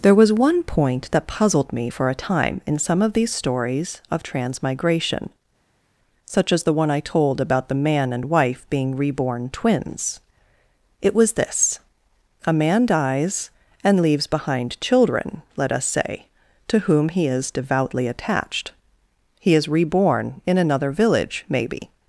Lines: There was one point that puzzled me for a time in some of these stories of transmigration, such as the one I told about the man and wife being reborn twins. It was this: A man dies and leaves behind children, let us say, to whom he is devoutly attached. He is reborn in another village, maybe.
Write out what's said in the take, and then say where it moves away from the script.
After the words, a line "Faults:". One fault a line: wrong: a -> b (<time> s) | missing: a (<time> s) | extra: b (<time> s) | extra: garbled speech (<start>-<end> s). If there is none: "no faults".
There was one point that puzzled me for a time in some of these stories of transmigration, such as the one I told about the man and wife being reborn twins. It was this: A man dies and leaves behind children, let us say, to whom he is devoutly attached. He is reborn in another village, maybe.
Faults:
no faults